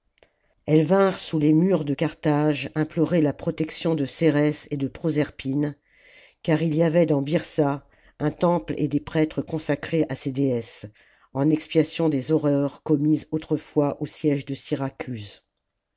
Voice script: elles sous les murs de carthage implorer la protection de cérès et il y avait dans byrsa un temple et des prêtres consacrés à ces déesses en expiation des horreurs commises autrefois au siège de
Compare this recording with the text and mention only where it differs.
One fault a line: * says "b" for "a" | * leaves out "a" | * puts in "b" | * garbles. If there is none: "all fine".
* puts in "vinrent"
* puts in "de proserpine car"